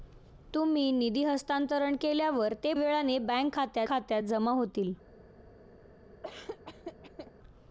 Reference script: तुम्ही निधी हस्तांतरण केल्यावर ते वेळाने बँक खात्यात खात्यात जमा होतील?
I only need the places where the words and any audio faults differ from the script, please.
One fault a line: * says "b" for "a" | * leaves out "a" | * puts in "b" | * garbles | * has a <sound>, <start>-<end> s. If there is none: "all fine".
* has a laugh, 6.2-7.3 s